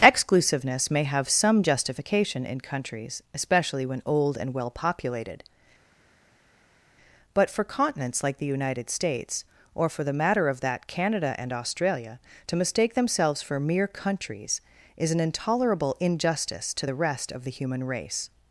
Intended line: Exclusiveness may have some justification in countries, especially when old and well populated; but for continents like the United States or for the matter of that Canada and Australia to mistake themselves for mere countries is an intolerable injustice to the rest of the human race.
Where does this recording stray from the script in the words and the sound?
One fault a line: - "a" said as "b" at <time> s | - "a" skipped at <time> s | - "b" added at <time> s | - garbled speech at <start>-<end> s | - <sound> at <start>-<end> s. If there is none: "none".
none